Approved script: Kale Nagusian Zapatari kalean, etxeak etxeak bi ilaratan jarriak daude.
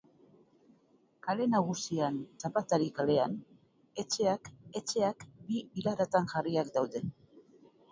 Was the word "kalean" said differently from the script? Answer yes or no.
no